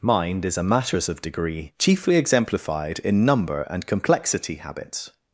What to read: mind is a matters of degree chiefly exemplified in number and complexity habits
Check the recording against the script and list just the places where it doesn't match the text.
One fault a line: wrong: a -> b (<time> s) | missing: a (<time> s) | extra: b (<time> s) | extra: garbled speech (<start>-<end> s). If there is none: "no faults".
no faults